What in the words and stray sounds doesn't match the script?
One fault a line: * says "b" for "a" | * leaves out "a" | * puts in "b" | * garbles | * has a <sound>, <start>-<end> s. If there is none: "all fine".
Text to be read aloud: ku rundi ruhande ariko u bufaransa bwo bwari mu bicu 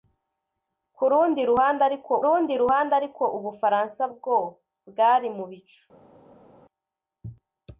* puts in "rundi ruhande ariko"